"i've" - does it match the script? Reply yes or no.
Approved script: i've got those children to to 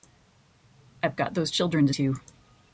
yes